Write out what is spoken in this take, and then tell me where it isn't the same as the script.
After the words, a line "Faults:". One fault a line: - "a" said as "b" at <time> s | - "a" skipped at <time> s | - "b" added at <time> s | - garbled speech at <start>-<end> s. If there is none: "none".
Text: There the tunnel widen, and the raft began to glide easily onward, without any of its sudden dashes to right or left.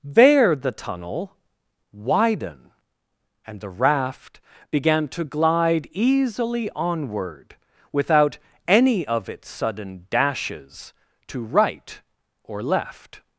There the tunnel widen, and the raft began to glide easily onward, without any of its sudden dashes to right or left.
Faults:
none